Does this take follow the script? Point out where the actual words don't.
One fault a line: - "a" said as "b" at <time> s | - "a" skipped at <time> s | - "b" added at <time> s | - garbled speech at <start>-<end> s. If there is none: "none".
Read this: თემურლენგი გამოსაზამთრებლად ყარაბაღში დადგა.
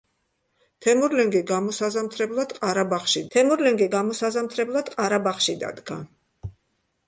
- "თემურლენგი გამოსაზამთრებლად ყარაბაღში" added at 3.3 s